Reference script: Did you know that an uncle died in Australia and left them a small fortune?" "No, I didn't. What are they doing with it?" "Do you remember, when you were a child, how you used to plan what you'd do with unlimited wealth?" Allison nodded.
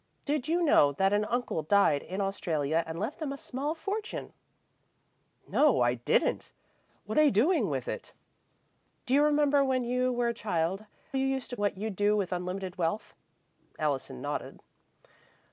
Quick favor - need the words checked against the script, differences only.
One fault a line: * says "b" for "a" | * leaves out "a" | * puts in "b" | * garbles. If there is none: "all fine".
* leaves out "are"
* leaves out "how"
* leaves out "plan"